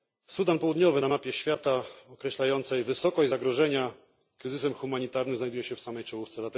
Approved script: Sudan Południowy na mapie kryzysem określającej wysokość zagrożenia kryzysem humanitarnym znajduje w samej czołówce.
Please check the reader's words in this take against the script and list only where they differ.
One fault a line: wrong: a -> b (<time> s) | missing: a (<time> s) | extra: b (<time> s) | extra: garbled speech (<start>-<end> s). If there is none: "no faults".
wrong: kryzysem -> świata (1.3 s)
extra: się (5.6 s)